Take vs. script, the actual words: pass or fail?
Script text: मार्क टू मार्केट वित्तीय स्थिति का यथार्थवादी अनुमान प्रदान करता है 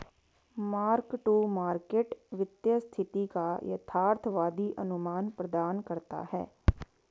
pass